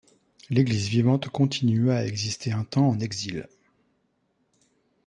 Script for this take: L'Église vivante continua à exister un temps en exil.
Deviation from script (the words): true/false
false